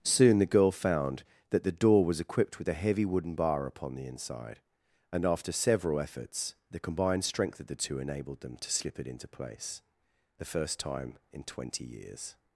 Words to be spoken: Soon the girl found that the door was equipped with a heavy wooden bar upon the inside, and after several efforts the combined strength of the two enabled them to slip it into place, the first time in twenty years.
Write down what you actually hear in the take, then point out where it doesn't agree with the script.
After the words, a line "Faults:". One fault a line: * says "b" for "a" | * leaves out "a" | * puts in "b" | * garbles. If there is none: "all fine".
Soon the girl found that the door was equipped with a heavy wooden bar upon the inside, and after several efforts the combined strength of the two enabled them to slip it into place, the first time in twenty years.
Faults:
all fine